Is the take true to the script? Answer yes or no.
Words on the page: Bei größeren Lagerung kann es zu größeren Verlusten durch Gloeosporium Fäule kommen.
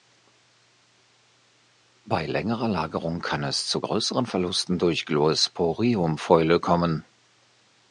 no